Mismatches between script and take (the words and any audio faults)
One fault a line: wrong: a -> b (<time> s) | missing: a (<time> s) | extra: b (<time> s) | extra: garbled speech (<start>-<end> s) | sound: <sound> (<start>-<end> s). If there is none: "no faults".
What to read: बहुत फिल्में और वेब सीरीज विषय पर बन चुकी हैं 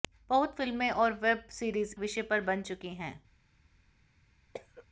sound: cough (4.5-4.9 s)